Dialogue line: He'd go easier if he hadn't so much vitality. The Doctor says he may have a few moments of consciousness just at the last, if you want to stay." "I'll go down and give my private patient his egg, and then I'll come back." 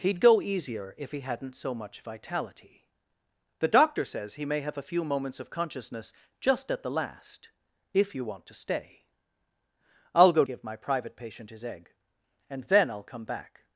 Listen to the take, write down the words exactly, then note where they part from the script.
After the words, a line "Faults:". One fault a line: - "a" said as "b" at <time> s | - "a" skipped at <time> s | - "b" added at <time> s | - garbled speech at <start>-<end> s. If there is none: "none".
He'd go easier if he hadn't so much vitality. The Doctor says he may have a few moments of consciousness just at the last, if you want to stay." "I'll go give my private patient his egg, and then I'll come back."
Faults:
- "down and" skipped at 10.4 s